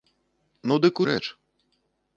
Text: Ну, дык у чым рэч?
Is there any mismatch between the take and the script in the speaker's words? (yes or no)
yes